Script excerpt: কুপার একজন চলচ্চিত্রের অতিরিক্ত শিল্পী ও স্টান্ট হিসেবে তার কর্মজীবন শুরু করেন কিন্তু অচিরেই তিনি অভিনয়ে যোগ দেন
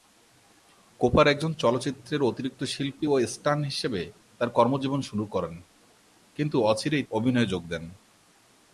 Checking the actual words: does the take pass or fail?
fail